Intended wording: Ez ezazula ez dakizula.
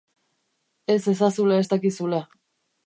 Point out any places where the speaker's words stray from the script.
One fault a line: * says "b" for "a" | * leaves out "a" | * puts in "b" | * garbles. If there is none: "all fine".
all fine